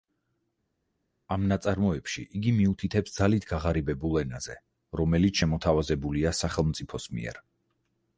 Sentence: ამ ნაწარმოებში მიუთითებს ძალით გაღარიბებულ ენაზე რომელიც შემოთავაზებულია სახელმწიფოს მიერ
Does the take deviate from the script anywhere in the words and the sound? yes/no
yes